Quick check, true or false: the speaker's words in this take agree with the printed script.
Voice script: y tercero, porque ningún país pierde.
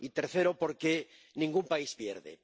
true